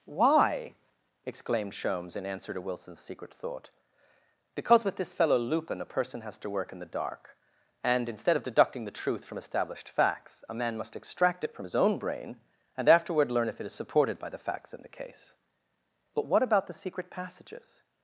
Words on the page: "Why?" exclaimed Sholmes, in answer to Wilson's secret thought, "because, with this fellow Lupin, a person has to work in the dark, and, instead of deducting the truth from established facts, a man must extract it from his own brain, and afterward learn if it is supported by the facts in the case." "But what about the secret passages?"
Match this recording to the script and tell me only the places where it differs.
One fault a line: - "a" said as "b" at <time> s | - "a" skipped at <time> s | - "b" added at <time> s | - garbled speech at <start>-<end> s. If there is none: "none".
none